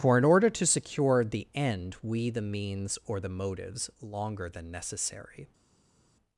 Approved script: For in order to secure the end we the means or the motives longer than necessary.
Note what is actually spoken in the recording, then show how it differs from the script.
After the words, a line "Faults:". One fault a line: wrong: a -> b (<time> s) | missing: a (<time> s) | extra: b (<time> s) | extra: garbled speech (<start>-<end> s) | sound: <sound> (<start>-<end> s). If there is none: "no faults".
For in order to secure the end we the means or the motives longer than necessary.
Faults:
no faults